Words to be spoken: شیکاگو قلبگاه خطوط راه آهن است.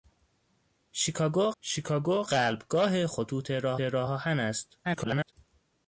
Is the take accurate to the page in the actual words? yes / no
no